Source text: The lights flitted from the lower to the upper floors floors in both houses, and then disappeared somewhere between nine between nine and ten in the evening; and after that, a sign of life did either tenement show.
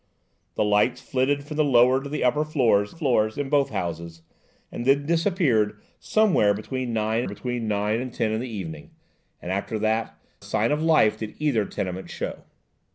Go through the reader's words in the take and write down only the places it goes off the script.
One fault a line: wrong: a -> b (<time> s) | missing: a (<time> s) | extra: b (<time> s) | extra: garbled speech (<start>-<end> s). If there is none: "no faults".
no faults